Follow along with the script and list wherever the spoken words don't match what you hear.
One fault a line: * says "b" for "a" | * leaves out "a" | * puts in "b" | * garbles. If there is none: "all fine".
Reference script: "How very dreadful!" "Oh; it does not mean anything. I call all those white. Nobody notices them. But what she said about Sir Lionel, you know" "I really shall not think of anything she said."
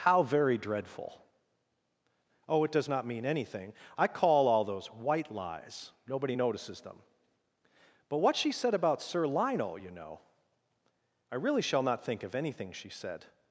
* puts in "lies"